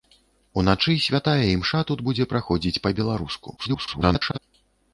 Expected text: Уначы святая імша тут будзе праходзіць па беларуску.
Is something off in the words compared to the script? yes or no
yes